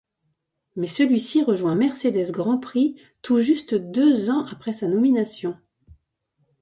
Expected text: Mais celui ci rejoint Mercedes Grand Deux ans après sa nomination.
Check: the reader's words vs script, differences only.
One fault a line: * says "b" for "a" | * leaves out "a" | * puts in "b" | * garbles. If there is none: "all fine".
* puts in "Prix tout juste"